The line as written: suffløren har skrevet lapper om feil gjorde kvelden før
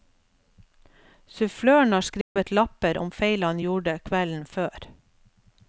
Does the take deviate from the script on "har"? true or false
false